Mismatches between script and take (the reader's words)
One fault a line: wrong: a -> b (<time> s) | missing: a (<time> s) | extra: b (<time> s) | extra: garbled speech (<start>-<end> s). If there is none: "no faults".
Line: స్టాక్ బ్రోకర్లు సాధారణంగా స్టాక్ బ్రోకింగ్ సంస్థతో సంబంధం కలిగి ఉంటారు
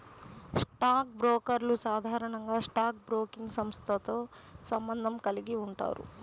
no faults